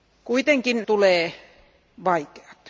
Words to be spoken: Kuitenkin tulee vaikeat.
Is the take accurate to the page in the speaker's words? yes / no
yes